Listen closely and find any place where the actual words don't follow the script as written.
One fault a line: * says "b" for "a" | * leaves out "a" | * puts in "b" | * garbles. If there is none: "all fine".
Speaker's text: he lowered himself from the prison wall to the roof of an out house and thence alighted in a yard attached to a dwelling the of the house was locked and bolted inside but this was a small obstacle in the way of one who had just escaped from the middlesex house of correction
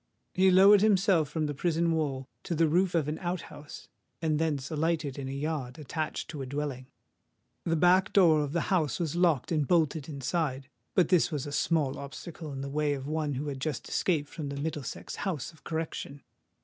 * puts in "back door"